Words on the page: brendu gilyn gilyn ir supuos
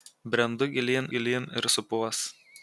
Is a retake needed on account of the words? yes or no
no